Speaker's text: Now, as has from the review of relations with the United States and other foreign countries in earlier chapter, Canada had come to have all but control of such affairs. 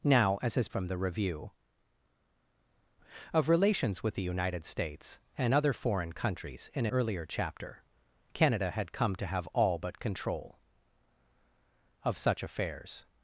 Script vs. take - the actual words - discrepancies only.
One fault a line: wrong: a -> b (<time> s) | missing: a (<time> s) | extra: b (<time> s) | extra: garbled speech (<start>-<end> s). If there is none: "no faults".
no faults